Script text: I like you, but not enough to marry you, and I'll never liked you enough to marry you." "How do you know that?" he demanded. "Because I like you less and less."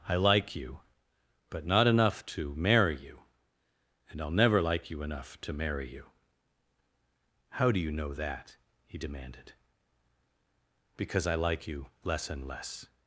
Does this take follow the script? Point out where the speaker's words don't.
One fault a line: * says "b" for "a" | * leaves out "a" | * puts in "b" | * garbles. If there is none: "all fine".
* says "like" for "liked"